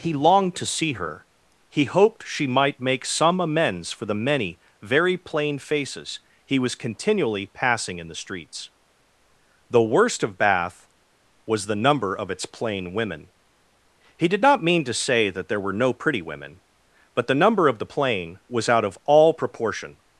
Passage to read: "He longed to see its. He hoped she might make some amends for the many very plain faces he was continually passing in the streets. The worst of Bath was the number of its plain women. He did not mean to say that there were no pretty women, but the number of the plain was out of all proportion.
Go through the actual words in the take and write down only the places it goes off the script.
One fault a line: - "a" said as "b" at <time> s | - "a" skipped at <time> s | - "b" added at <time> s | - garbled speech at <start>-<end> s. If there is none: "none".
- "its" said as "her" at 0.9 s